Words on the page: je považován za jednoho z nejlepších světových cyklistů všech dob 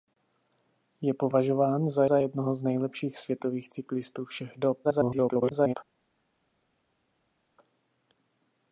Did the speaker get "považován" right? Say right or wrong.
right